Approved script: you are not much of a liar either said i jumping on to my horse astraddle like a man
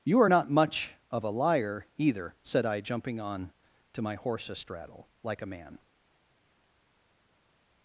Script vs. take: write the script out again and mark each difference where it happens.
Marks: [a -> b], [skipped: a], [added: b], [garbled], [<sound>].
you are not much of a liar either said i jumping on to my horse astraddle like a man